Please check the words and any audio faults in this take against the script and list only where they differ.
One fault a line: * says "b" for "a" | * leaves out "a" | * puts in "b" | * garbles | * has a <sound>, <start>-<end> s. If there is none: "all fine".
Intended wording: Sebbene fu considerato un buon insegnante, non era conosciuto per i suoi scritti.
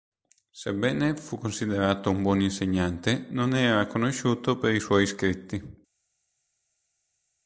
all fine